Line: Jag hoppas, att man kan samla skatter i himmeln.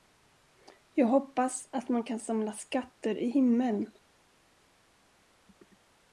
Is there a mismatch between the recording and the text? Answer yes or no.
no